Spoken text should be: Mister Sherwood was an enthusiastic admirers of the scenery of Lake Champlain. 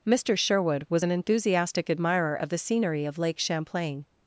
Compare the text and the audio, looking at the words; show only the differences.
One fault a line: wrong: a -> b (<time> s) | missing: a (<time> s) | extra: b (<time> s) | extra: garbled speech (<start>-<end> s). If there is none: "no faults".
wrong: admirers -> admirer (1.9 s)